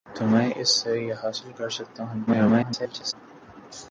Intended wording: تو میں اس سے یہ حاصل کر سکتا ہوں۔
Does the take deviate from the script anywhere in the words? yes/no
yes